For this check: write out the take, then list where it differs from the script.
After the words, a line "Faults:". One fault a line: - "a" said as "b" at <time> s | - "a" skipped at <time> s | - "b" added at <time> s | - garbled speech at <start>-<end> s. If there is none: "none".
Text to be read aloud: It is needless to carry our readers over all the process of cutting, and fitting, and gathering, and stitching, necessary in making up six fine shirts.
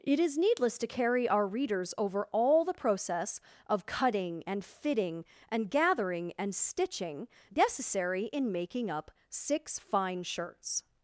It is needless to carry our readers over all the process of cutting, and fitting, and gathering, and stitching, necessary in making up six fine shirts.
Faults:
none